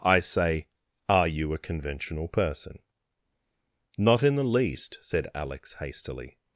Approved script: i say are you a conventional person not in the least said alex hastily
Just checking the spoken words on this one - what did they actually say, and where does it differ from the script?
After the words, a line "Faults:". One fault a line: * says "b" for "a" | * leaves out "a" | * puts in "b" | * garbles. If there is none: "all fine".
i say are you a conventional person not in the least said alex hastily
Faults:
all fine